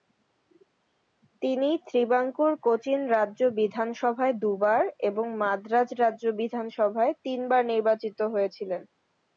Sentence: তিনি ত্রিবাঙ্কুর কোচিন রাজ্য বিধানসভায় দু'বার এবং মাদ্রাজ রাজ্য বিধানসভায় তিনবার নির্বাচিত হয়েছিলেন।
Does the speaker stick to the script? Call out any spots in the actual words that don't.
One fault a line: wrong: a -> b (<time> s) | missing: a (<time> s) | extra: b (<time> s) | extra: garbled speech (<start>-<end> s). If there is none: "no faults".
no faults